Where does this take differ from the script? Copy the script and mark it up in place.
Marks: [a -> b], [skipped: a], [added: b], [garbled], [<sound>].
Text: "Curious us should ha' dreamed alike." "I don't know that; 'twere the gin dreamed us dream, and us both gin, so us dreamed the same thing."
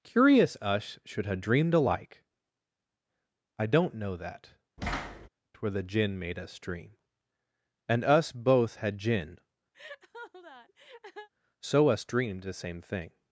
"Curious us should ha' dreamed alike." "I don't know that; [thud] 'twere the gin [dreamed -> made] us dream, and us both [added: had] gin, [laugh] so us dreamed the same thing."